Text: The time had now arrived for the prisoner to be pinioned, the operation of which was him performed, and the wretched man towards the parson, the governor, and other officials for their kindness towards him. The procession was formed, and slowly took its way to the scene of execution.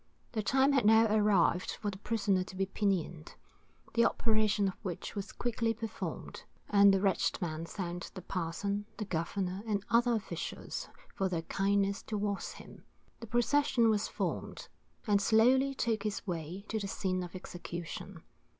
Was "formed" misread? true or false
false